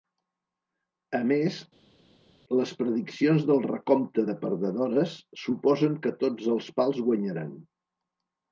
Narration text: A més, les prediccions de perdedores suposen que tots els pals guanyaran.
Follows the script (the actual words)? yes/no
no